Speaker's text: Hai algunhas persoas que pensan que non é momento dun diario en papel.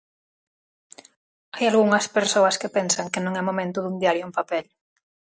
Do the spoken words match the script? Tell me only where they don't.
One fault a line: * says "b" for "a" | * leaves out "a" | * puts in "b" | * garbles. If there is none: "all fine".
all fine